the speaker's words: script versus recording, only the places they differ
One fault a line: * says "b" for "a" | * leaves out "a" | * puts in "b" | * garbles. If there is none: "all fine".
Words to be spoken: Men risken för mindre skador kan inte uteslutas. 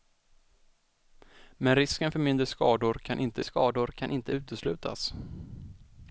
* puts in "skador kan inte"